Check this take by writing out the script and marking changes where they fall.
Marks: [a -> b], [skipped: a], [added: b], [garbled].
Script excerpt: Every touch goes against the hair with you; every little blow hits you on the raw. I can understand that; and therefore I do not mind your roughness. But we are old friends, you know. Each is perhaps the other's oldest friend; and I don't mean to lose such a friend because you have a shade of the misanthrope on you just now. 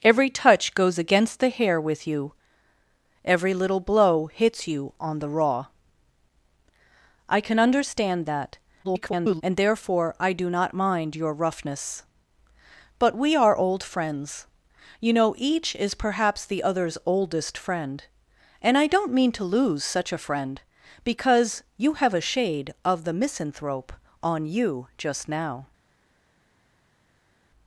Every touch goes against the hair with you; every little blow hits you on the raw. I can understand that; [garbled] and therefore I do not mind your roughness. But we are old friends, you know. Each is perhaps the other's oldest friend; and I don't mean to lose such a friend because you have a shade of the misanthrope on you just now.